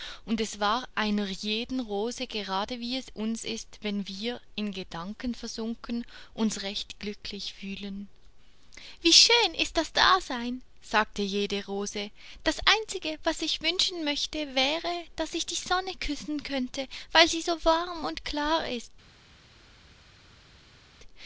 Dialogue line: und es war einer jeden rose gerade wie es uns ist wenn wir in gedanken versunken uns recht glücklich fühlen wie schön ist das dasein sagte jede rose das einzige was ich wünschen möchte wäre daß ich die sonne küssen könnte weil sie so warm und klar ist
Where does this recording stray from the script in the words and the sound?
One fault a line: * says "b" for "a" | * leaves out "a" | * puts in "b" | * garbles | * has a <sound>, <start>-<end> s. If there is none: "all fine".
all fine